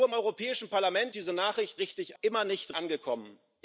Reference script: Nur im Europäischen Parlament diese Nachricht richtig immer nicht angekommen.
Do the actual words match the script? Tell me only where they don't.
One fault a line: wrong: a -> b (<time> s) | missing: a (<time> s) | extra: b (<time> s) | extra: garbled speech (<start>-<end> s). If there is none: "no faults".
no faults